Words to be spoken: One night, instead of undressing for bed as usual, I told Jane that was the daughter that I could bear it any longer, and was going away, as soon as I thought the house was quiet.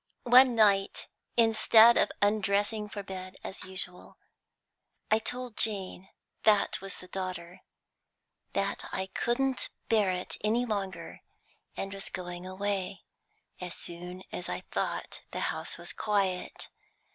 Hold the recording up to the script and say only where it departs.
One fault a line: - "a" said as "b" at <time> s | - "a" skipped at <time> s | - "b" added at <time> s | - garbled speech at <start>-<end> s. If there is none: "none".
- "could" said as "couldn't" at 9.1 s